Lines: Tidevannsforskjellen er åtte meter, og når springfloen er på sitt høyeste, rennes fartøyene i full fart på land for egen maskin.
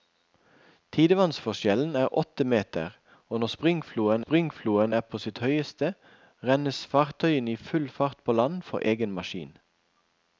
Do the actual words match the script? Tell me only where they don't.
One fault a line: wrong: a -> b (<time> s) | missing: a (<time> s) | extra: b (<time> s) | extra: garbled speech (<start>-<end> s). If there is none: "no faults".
extra: springfloen (4.2 s)